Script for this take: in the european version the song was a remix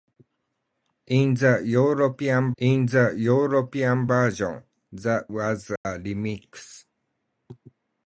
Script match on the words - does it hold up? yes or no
no